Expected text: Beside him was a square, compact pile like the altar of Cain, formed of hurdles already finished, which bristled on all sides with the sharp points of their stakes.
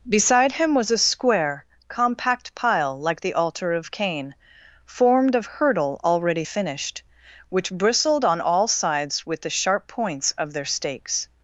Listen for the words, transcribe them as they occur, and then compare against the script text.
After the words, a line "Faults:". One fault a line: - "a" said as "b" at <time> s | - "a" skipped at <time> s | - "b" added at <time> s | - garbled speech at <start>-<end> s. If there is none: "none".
Beside him was a square, compact pile like the altar of Cain, formed of hurdle already finished, which bristled on all sides with the sharp points of their stakes.
Faults:
- "hurdles" said as "hurdle" at 5.5 s